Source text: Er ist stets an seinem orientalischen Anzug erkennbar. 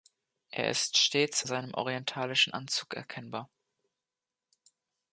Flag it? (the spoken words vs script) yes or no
yes